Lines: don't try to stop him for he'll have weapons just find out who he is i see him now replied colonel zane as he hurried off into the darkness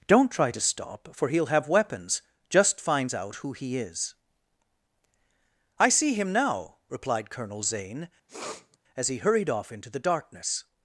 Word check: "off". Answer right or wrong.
right